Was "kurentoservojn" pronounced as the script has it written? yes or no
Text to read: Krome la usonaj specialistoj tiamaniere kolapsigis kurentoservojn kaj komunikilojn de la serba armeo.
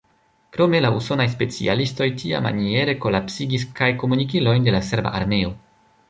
no